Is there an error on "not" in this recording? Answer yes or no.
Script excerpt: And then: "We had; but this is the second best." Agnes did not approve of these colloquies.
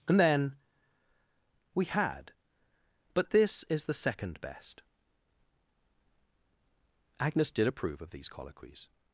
yes